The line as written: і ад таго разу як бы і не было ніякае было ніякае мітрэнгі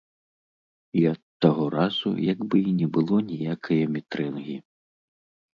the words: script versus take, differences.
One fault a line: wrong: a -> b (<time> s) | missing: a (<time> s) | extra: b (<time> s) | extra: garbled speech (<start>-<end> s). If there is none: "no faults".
missing: было ніякае (3.8 s)